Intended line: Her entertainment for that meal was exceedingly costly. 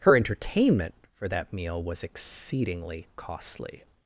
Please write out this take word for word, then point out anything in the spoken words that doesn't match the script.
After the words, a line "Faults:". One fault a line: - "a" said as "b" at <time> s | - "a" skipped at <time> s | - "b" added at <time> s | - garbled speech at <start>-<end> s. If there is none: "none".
Her entertainment for that meal was exceedingly costly.
Faults:
none